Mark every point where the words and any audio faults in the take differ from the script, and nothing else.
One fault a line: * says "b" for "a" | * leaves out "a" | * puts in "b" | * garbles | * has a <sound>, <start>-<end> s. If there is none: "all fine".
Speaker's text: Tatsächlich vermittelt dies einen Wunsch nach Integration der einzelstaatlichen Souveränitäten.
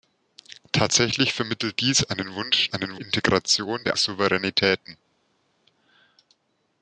* says "einen" for "nach"
* leaves out "einzelstaatlichen"